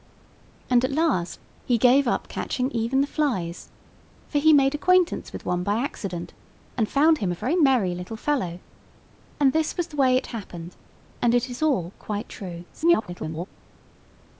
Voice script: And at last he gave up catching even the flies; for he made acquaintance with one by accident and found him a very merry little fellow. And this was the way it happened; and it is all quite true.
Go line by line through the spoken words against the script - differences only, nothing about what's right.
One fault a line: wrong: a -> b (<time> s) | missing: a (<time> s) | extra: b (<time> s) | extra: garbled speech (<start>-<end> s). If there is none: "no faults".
extra: garbled speech (12.7-13.5 s)